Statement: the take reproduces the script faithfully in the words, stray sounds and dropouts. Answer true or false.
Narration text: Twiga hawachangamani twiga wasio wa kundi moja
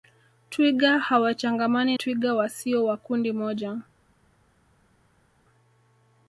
true